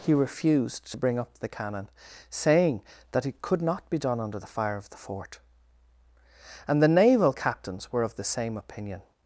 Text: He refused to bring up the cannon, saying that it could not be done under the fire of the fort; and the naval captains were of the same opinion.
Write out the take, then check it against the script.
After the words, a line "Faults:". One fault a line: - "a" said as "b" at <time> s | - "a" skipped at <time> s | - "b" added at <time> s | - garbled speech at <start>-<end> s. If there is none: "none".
He refused to bring up the cannon, saying that it could not be done under the fire of the fort; and the naval captains were of the same opinion.
Faults:
none